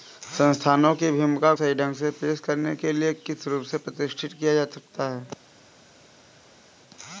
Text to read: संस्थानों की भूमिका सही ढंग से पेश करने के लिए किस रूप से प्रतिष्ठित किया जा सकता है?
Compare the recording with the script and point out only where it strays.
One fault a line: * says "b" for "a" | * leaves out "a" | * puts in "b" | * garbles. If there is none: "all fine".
all fine